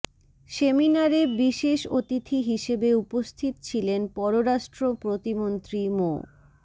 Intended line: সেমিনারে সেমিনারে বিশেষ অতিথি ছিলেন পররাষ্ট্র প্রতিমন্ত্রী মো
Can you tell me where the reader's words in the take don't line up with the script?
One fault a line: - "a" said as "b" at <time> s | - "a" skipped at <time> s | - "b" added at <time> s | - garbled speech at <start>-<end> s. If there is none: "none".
- "সেমিনারে" skipped at 1.2 s
- "হিসেবে উপস্থিত" added at 2.4 s